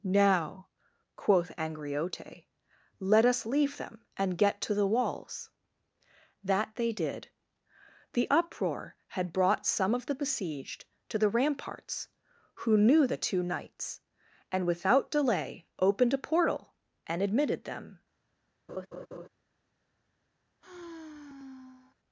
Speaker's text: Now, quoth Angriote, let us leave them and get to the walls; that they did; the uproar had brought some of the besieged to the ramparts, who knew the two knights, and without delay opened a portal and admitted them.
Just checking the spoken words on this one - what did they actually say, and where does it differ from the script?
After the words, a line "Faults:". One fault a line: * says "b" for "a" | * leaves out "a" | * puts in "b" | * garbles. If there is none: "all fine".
Now, quoth Angriote, let us leave them and get to the walls; that they did; the uproar had brought some of the besieged to the ramparts, who knew the two knights, and without delay opened a portal and admitted them.
Faults:
all fine